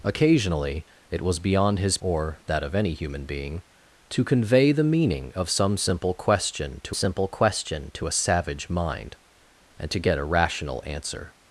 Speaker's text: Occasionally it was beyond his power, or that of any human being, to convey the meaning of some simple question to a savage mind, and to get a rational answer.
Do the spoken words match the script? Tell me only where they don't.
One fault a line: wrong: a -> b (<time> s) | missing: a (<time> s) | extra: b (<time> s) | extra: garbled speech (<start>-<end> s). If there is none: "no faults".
missing: power (2.0 s)
extra: simple question to (6.9 s)